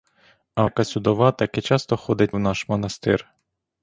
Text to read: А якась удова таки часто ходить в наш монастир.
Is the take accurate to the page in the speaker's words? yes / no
yes